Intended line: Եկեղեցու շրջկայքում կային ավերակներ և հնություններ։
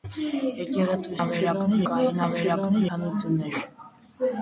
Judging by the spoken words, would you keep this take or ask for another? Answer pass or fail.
fail